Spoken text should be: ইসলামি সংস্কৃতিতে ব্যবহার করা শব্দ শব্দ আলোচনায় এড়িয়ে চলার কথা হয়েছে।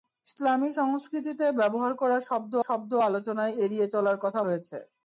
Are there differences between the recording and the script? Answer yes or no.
no